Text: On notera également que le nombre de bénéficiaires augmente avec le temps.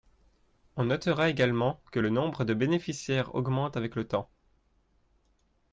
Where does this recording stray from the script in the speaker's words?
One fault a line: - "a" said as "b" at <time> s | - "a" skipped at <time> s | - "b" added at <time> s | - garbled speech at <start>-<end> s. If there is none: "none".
none